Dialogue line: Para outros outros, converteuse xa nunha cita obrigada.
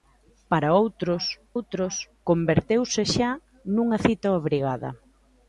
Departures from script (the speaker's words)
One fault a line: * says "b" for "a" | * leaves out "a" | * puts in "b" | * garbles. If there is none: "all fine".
all fine